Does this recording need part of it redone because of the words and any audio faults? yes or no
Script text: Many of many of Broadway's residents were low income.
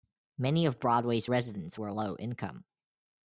yes